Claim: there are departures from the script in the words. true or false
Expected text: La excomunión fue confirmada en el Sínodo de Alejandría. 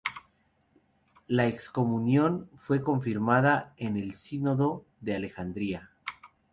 false